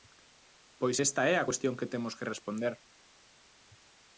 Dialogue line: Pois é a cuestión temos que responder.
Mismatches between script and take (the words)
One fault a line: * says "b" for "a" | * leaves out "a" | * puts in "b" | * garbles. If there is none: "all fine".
* puts in "esta"
* puts in "que"